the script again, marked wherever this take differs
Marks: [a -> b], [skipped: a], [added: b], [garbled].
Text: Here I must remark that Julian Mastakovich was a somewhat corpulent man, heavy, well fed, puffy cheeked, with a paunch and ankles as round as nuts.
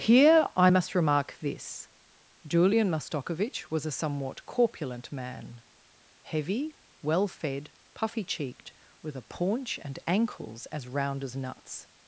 Here I must remark [that -> this] Julian Mastakovich was a somewhat corpulent man, heavy, well fed, puffy cheeked, with a paunch and ankles as round as nuts.